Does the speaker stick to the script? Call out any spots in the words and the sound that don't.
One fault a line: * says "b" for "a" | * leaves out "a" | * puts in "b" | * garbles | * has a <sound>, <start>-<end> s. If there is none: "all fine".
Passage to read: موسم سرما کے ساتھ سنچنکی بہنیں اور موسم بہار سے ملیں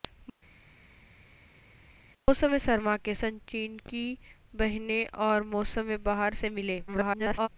* leaves out "ساتھ"
* garbles